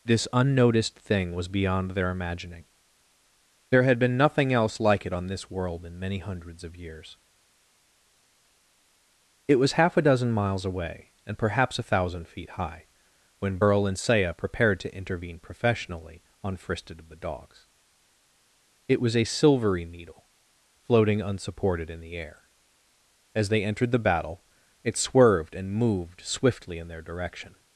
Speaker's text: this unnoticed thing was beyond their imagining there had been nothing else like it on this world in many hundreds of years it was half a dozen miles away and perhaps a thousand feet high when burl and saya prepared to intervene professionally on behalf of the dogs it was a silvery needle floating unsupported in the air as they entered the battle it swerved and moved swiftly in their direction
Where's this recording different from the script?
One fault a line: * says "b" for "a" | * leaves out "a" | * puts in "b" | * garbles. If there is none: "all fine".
* says "fristed" for "behalf"